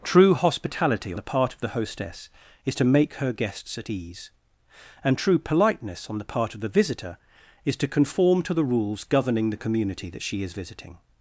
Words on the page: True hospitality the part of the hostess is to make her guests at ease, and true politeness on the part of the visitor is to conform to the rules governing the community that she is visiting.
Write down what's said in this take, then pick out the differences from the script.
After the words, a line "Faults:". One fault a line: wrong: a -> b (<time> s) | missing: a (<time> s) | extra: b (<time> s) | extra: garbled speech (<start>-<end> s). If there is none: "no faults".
True hospitality the part of the hostess is to make her guests at ease, and true politeness on the part of the visitor is to conform to the rules governing the community that she is visiting.
Faults:
no faults